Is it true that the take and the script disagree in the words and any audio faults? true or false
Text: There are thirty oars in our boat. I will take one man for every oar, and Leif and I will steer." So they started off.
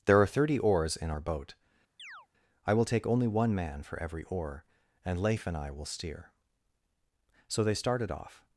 true